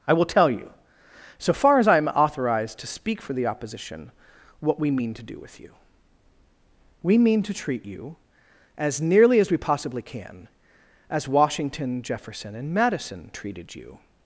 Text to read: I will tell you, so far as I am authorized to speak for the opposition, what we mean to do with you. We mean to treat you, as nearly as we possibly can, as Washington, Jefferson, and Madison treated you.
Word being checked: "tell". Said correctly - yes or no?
yes